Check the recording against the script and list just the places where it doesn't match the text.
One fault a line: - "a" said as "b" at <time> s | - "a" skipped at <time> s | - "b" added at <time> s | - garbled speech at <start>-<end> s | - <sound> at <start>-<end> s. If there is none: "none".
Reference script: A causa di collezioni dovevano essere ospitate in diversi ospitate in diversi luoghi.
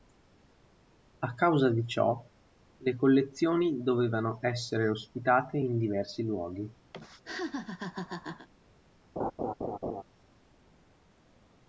- "ciò le" added at 1.9 s
- "ospitate in diversi" skipped at 6.2 s
- laugh at 6.9-8.5 s
- laugh at 9.2-10.0 s